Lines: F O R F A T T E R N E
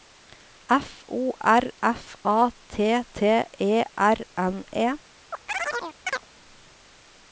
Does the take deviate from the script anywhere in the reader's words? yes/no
no